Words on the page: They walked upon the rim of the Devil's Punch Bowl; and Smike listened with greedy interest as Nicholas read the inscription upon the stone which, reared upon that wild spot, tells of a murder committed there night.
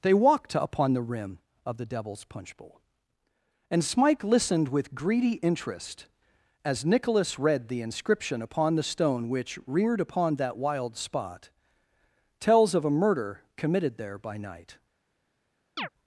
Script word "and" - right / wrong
right